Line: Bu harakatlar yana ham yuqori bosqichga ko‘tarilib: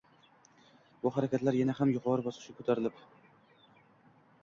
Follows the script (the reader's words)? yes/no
yes